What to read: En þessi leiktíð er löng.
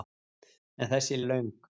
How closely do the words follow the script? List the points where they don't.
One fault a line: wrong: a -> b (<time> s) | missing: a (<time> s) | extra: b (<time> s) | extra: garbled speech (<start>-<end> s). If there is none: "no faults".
missing: leiktíð (1.2 s)